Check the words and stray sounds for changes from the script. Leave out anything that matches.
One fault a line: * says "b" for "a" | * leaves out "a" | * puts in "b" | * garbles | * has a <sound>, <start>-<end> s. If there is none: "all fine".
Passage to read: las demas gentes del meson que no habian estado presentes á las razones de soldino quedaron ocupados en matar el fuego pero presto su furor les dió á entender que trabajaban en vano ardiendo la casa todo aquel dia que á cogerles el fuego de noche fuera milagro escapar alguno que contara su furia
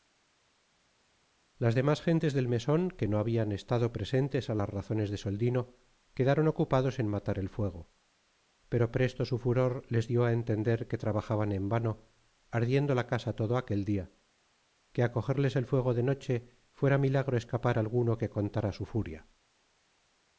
all fine